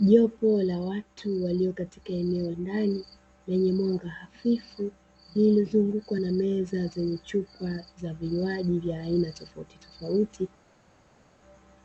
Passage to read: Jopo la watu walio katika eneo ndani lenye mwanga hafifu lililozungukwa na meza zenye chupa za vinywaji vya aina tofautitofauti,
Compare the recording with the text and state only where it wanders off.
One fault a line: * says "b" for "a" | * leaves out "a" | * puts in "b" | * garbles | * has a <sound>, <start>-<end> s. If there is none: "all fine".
all fine